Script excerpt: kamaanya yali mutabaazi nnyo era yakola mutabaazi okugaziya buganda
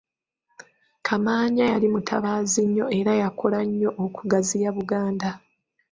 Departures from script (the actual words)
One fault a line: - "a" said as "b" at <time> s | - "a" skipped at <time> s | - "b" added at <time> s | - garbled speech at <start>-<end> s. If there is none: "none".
- "mutabaazi" said as "nnyo" at 3.7 s